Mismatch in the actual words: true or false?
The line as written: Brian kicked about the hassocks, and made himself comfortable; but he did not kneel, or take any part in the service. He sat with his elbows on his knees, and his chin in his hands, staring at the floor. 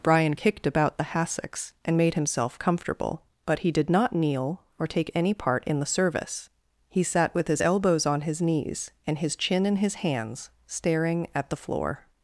false